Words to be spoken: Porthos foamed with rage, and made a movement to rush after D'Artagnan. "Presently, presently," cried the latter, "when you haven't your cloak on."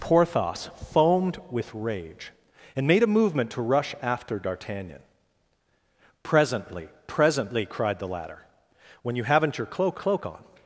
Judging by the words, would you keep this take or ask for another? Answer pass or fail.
fail